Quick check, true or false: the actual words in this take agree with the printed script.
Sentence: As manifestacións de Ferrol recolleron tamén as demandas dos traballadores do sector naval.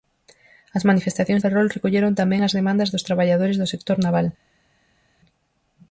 false